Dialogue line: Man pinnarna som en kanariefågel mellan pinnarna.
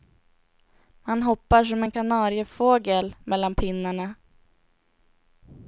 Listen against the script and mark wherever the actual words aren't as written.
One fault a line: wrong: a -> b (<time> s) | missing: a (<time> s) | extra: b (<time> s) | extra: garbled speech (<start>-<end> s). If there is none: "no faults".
wrong: pinnarna -> hoppar (1.2 s)